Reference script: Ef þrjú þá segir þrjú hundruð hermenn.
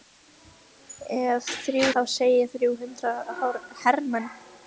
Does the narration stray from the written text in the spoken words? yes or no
no